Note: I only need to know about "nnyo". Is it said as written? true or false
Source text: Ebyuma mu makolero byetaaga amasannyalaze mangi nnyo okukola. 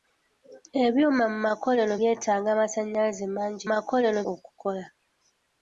false